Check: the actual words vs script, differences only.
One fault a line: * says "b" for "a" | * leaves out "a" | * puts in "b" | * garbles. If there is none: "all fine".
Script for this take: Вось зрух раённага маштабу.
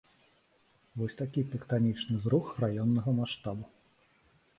* puts in "такі тэктанічны"